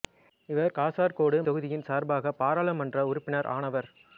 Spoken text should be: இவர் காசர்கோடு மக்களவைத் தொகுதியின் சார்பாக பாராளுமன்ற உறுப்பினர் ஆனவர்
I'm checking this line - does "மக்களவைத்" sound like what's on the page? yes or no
no